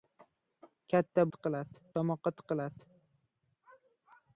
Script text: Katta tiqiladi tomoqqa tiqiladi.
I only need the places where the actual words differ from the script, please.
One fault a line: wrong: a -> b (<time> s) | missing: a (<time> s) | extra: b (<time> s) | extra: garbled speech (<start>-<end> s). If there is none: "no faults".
no faults